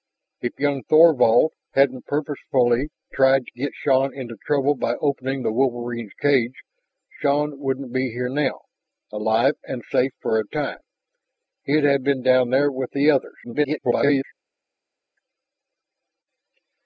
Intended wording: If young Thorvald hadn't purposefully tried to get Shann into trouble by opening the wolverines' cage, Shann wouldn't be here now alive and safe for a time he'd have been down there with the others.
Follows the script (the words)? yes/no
no